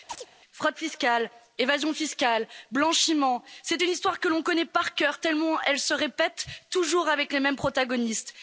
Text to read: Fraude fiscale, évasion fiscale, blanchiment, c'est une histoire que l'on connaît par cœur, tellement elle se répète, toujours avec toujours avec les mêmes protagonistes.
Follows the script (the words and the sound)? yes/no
no